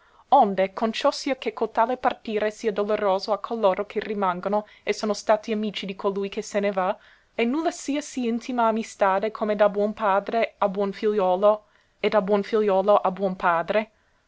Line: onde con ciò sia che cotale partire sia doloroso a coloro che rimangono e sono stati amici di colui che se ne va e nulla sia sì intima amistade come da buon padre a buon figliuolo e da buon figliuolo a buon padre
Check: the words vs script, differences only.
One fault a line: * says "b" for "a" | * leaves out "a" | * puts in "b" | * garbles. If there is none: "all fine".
all fine